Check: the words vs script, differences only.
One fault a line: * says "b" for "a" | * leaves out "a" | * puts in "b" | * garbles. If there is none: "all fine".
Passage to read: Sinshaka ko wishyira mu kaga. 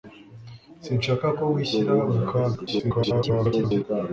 * garbles